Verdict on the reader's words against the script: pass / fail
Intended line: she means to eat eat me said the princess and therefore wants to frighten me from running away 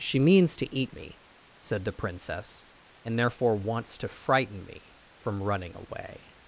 fail